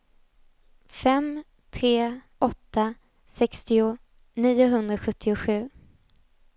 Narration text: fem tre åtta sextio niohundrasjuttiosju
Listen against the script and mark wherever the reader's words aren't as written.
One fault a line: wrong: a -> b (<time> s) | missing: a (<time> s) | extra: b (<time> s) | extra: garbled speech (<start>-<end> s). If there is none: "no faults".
no faults